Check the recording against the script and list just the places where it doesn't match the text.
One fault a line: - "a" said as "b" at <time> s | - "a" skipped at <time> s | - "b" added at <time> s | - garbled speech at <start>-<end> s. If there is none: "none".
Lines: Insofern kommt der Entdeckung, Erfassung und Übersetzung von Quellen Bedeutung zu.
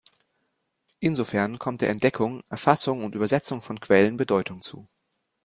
none